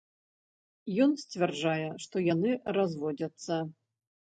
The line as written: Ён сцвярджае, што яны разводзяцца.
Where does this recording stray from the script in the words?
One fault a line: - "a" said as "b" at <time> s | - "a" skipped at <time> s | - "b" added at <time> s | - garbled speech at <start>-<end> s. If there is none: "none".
none